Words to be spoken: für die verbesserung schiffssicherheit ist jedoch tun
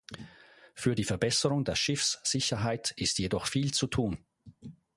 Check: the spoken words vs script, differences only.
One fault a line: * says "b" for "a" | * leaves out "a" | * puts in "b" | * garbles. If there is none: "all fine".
* puts in "der"
* puts in "viel zu"